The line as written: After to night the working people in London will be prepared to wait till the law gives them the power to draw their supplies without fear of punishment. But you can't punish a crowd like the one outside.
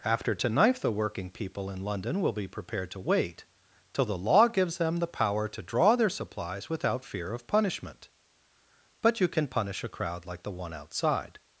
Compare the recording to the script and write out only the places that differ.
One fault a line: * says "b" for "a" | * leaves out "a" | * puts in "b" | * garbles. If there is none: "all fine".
* says "knife" for "night"
* says "can" for "can't"